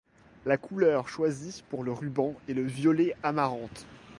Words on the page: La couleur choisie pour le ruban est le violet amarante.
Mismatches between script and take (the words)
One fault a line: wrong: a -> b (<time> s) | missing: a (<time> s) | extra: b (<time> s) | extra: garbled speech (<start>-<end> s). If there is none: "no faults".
no faults